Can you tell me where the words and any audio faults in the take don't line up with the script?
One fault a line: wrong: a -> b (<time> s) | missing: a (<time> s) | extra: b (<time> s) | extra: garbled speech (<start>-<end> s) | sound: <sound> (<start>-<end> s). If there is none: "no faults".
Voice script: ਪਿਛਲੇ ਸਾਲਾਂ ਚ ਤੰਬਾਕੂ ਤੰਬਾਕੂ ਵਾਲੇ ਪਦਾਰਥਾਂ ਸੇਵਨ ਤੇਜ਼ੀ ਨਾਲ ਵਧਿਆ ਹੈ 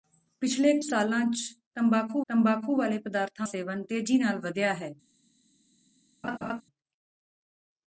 sound: laugh (6.2-6.6 s)